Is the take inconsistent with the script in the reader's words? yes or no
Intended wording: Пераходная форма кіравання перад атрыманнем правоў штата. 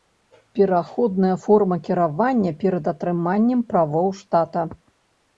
no